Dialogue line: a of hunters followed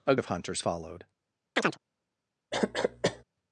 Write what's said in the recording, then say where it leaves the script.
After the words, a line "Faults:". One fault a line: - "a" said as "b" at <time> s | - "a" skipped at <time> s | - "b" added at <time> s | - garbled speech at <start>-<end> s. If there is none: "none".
a of hunters followed
Faults:
none